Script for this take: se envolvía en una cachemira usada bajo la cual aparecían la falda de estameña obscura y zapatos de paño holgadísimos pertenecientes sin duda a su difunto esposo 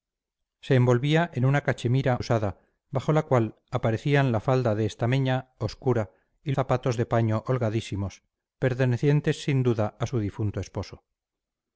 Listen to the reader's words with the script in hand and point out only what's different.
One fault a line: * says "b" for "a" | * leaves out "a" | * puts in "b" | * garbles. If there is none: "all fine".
all fine